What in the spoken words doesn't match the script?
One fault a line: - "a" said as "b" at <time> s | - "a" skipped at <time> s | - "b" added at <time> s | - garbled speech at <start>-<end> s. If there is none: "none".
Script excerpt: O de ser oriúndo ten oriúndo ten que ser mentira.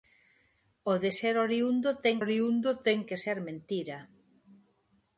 none